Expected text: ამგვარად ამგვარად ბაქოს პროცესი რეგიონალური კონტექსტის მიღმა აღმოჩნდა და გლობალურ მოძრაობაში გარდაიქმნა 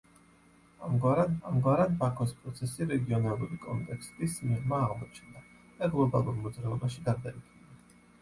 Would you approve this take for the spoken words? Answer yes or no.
yes